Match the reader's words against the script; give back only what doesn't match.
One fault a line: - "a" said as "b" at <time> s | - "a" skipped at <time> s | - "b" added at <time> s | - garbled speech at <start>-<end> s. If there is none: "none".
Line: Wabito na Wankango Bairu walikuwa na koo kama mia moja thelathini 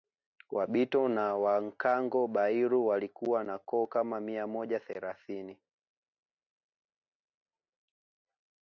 none